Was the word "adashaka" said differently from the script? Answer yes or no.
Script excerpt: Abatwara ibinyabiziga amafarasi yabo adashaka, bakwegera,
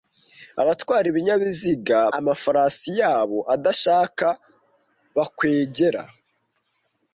no